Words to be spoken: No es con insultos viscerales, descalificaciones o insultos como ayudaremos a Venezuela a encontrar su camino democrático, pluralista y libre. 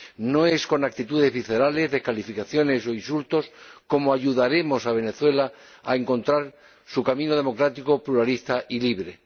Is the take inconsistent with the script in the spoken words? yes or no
yes